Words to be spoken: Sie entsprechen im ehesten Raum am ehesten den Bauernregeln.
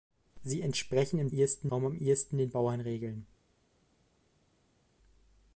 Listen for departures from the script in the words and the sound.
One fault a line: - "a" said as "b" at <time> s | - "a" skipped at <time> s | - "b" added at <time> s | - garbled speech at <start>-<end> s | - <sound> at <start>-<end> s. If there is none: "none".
none